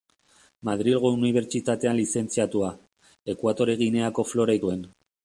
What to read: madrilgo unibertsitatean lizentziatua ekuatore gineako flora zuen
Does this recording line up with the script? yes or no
yes